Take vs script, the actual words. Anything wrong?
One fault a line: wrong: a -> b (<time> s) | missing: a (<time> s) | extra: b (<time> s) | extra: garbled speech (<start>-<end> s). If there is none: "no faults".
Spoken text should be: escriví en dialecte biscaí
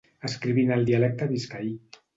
extra: el (0.7 s)